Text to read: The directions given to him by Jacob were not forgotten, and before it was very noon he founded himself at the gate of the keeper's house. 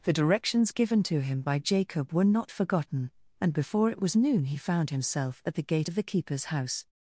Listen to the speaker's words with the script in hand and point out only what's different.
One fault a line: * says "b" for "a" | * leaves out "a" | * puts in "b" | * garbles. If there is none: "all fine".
* leaves out "very"
* says "found" for "founded"